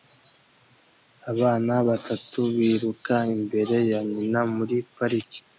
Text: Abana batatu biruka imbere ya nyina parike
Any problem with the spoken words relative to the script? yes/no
yes